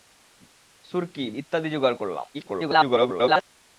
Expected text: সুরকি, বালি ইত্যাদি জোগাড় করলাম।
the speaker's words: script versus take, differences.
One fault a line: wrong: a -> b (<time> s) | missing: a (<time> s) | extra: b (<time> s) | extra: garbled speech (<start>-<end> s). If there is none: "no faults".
missing: বালি (1.2 s)
extra: garbled speech (2.3-3.4 s)